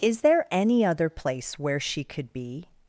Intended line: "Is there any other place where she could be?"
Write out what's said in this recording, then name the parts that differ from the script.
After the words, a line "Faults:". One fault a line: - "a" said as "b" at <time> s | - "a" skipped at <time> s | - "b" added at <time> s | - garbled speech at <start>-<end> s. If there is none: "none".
"Is there any other place where she could be?"
Faults:
none